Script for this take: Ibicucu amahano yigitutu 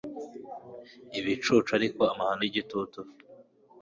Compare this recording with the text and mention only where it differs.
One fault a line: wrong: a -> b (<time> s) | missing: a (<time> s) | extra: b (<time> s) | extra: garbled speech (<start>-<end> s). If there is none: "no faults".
extra: ariko (1.8 s)